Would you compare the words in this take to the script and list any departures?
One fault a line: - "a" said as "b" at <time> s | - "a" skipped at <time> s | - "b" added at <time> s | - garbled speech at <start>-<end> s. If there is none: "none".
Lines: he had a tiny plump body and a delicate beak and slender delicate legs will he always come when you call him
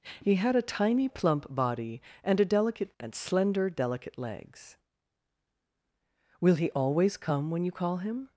- "beak" skipped at 2.9 s